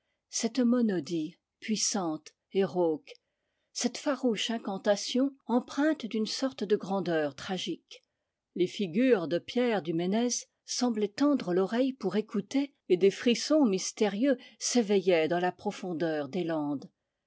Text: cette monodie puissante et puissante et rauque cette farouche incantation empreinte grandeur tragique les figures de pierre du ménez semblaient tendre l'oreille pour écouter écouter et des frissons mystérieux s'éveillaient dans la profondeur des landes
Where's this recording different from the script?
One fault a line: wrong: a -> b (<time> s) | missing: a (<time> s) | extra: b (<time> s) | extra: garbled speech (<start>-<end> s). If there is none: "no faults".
missing: puissante et (2.6 s)
extra: d'une sorte de (6.0 s)
missing: écouter (12.7 s)